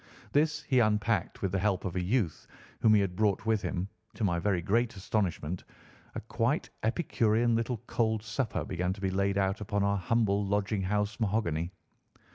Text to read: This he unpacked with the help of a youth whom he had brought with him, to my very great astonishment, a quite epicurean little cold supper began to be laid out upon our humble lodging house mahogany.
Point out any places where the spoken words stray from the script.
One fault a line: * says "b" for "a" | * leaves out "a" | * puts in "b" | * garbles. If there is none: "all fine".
all fine